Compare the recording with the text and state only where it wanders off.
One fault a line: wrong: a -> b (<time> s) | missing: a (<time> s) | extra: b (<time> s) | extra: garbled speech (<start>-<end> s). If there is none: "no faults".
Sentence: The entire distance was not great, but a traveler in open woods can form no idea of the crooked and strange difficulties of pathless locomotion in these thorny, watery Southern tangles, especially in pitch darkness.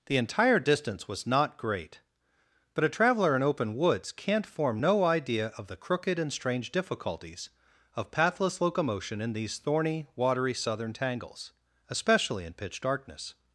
wrong: can -> can't (4.1 s)